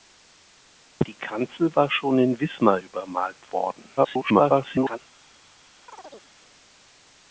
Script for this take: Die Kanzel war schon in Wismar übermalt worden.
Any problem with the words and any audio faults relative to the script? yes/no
yes